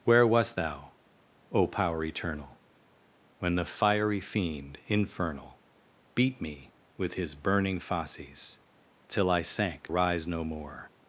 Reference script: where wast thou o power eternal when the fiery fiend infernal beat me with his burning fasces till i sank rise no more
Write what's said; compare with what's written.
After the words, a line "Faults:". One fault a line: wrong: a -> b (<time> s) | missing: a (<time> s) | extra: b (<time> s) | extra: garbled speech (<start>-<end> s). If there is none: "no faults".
where wast thou o power eternal when the fiery fiend infernal beat me with his burning fasces till i sank rise no more
Faults:
no faults